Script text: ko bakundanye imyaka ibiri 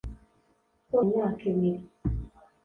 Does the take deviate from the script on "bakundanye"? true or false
true